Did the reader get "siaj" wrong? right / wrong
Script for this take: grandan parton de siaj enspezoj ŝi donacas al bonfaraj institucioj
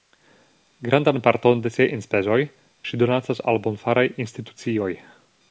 right